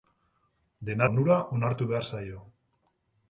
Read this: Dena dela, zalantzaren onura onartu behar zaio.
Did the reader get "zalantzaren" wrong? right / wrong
wrong